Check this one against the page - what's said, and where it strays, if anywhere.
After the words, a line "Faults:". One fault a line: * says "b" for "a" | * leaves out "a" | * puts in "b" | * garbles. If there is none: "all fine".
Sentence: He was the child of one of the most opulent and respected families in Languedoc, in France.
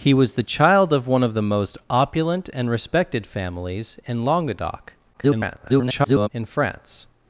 He was the child of one of the most opulent and respected families in Languedoc, [garbled] in France.
Faults:
* garbles